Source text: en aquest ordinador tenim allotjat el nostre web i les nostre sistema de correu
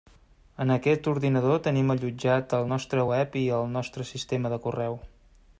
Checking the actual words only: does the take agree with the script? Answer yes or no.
no